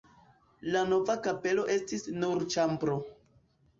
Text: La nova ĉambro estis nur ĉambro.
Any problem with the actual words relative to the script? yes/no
yes